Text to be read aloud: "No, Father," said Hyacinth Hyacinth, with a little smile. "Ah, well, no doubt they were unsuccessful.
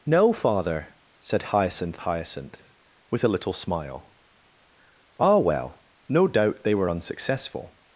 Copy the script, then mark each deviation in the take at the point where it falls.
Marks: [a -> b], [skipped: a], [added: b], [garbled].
"No, Father," said Hyacinth Hyacinth, with a little smile. "Ah, well, no doubt they were unsuccessful.